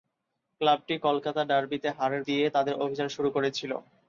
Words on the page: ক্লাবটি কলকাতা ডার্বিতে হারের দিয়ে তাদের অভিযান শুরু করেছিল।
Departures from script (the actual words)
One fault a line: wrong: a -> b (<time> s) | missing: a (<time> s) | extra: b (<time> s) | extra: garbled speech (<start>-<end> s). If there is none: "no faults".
no faults